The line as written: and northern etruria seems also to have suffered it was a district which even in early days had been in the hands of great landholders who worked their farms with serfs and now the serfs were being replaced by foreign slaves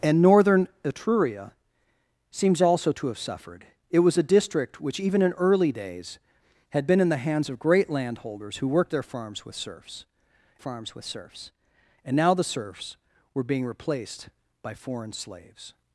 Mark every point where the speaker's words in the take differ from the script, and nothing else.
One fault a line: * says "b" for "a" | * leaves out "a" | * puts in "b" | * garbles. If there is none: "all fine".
* puts in "farms with serfs"